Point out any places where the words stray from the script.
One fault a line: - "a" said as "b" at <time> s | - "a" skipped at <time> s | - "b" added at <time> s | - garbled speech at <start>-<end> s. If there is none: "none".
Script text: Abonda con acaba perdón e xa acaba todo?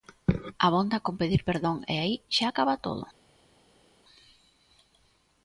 - "acaba" said as "pedir" at 1.2 s
- "aí" added at 2.0 s